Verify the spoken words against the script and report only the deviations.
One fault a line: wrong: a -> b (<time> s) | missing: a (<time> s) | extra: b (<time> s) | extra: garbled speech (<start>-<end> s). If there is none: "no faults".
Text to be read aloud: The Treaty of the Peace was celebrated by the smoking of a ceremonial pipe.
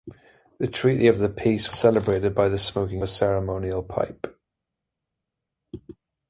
missing: was (1.7 s)
missing: of (3.0 s)